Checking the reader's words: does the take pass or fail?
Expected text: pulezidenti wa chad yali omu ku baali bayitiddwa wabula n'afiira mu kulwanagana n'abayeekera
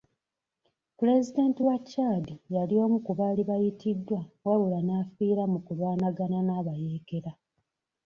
pass